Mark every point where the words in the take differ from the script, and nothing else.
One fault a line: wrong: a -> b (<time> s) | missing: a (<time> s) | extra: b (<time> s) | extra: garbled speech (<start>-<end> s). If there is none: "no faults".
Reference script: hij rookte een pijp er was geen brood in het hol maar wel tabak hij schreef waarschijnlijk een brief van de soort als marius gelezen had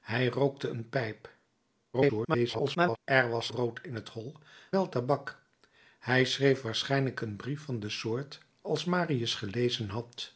extra: garbled speech (1.9-3.0 s)
missing: geen (3.5 s)
missing: maar (4.3 s)